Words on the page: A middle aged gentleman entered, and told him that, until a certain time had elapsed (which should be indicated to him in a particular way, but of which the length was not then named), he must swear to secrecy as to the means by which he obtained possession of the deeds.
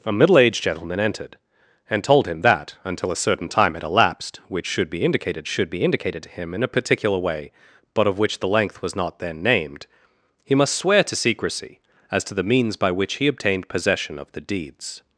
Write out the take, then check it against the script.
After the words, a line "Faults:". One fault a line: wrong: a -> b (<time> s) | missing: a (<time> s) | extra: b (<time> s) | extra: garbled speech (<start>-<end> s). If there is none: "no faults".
A middle aged gentleman entered, and told him that, until a certain time had elapsed (which should be indicated should be indicated to him in a particular way, but of which the length was not then named), he must swear to secrecy as to the means by which he obtained possession of the deeds.
Faults:
extra: should be indicated (5.5 s)